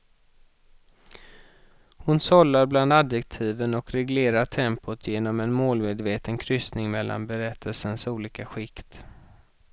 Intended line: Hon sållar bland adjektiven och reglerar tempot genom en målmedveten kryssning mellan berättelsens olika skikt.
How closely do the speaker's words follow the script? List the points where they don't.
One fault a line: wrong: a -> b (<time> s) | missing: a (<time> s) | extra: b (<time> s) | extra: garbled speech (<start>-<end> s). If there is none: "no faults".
no faults